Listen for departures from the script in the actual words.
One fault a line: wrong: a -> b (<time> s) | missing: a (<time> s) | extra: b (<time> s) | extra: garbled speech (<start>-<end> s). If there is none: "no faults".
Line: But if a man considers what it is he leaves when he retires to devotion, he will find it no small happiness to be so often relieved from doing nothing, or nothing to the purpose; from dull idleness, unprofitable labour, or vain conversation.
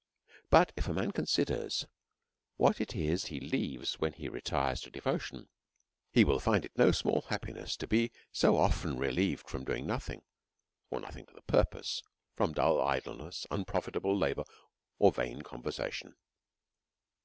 no faults